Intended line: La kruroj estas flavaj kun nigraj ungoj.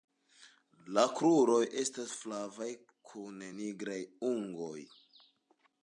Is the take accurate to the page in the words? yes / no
yes